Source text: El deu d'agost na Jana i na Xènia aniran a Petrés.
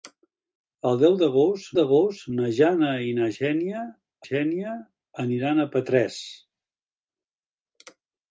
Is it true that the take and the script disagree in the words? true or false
true